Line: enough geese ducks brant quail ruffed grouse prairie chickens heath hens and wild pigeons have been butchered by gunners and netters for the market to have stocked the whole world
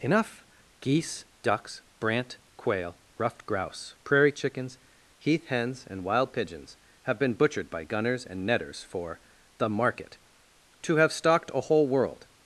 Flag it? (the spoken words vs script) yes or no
yes